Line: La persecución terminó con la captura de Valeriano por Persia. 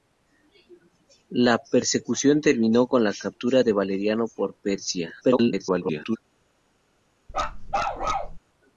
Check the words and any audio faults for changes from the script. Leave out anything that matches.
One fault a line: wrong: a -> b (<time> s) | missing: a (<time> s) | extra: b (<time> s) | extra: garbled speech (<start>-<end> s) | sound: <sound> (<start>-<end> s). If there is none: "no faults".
extra: garbled speech (5.2-6.2 s)
sound: bark (7.3-8.4 s)